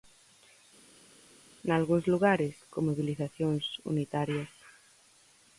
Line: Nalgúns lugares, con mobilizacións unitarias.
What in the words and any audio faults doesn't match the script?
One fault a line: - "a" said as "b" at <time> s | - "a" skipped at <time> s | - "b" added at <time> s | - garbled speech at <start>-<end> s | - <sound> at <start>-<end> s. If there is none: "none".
none